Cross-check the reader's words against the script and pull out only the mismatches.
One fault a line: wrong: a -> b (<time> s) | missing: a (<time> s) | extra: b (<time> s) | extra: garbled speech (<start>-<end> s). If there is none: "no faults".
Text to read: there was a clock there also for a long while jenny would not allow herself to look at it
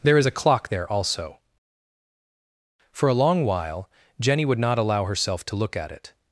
wrong: was -> is (0.2 s)